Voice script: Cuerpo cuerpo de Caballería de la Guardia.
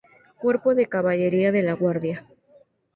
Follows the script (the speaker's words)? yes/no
no